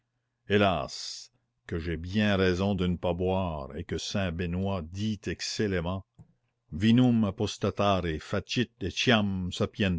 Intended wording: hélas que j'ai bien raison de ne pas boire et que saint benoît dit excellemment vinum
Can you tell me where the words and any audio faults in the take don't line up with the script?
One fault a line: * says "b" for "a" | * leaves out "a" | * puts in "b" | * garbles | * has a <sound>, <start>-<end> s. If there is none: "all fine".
all fine